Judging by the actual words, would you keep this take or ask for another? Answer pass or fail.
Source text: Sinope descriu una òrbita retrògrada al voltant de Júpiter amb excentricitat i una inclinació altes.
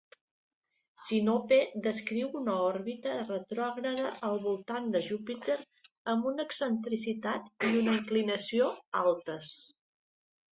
fail